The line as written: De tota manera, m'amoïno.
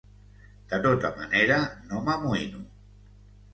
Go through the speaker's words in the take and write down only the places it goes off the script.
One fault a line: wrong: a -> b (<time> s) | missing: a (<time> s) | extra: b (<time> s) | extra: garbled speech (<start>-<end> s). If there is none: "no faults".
extra: no (1.9 s)